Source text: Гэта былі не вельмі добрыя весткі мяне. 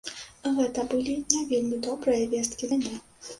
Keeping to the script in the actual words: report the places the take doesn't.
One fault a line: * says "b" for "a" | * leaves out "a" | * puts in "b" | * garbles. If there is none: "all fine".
all fine